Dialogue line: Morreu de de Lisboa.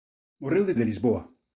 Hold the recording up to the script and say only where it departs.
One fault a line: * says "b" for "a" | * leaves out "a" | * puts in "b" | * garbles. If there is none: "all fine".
all fine